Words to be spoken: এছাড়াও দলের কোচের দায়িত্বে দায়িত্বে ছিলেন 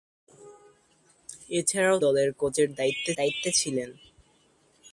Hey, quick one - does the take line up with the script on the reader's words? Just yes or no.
yes